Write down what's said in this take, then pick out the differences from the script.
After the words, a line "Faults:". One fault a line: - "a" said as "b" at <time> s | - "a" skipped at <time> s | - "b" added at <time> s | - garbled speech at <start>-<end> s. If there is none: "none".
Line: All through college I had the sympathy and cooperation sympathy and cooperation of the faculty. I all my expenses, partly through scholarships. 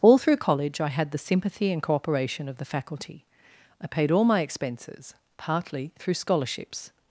All through college I had the sympathy and cooperation of the faculty. I paid all my expenses, partly through scholarships.
Faults:
- "sympathy and cooperation" skipped at 2.5 s
- "paid" added at 3.9 s